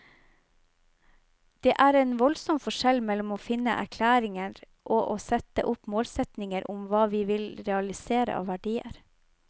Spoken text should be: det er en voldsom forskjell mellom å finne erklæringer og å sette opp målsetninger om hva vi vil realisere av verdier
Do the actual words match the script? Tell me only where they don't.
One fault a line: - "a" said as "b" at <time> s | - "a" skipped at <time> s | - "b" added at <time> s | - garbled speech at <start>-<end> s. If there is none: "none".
none